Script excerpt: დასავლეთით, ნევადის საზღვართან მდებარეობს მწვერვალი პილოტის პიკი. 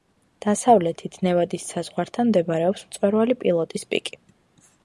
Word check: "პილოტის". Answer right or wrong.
right